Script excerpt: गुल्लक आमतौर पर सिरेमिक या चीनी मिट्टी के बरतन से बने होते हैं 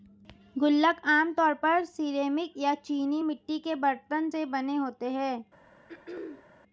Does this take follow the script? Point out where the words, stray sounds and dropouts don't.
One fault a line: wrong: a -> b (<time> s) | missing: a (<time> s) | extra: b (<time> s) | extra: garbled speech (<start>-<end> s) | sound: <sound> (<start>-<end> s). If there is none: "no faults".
sound: throat clearing (5.9-6.5 s)